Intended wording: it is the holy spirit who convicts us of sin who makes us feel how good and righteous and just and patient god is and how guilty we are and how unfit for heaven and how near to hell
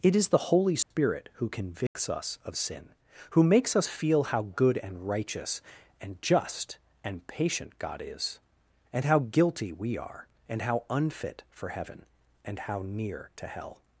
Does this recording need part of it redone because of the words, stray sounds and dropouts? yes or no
yes